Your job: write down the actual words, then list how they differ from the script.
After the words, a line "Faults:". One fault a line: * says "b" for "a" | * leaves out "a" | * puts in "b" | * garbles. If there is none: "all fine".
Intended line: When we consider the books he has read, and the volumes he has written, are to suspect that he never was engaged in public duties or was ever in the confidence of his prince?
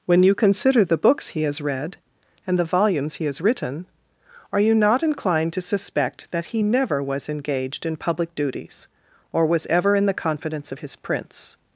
When you consider the books he has read, and the volumes he has written, are you not inclined to suspect that he never was engaged in public duties or was ever in the confidence of his prince?
Faults:
* says "you" for "we"
* puts in "you not inclined"